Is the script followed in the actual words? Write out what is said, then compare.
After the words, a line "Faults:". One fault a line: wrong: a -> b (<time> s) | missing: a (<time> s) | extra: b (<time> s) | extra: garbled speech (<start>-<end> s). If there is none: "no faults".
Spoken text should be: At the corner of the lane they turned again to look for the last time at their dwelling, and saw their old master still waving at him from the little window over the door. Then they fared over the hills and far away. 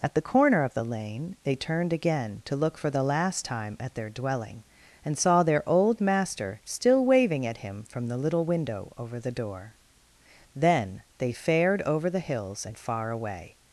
At the corner of the lane they turned again to look for the last time at their dwelling, and saw their old master still waving at him from the little window over the door. Then they fared over the hills and far away.
Faults:
no faults